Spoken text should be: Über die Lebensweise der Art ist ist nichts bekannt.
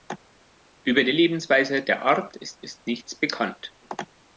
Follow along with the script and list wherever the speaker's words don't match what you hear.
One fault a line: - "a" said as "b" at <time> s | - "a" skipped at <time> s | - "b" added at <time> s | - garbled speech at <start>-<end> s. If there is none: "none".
none